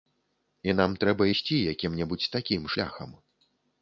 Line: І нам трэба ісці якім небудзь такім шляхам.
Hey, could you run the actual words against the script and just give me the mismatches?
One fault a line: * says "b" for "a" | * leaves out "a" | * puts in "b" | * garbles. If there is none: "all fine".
all fine